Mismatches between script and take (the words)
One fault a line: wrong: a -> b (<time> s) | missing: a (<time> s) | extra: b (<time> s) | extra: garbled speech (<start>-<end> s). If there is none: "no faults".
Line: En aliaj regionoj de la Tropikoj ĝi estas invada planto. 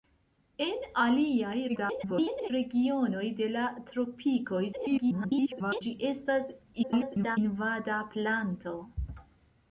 extra: garbled speech (1.7-2.5 s)
extra: garbled speech (4.7-5.8 s)
extra: garbled speech (6.8-7.4 s)